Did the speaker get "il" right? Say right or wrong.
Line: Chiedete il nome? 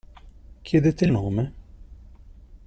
right